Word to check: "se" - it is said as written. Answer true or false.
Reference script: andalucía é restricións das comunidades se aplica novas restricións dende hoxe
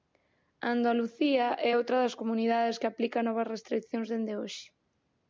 false